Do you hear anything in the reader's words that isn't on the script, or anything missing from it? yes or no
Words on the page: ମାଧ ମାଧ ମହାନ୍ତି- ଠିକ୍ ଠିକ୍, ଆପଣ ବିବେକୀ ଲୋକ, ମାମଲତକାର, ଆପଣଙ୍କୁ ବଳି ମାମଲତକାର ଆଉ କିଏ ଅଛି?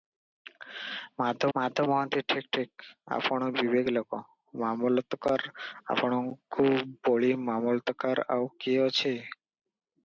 no